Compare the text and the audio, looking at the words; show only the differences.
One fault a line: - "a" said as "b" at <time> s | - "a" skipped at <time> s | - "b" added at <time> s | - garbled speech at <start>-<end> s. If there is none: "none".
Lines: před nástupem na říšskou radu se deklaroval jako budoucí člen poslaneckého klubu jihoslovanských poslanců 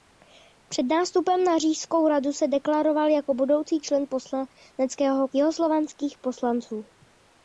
- "klubu" skipped at 5.3 s